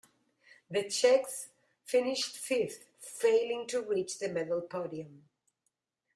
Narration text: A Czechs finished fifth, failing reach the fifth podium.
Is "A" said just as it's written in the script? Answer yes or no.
no